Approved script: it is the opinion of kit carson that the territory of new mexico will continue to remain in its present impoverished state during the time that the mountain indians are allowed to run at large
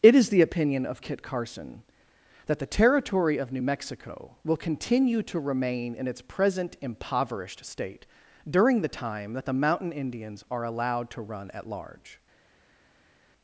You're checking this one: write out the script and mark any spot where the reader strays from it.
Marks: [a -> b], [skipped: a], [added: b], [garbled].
it is the opinion of kit carson that the territory of new mexico will continue to remain in its present impoverished state during the time that the mountain indians are allowed to run at large